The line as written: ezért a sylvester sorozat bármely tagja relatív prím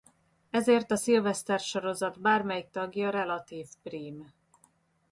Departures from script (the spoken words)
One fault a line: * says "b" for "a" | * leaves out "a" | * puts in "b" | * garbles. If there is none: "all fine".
all fine